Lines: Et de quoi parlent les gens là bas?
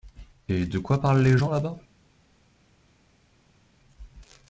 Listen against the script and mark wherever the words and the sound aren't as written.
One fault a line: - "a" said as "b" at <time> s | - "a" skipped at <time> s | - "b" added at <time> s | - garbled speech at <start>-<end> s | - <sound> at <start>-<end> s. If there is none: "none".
none